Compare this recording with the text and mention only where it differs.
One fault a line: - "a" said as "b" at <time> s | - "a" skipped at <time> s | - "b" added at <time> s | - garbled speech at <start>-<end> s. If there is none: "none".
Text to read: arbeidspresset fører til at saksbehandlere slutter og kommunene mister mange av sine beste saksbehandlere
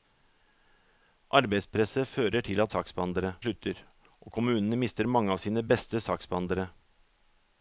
none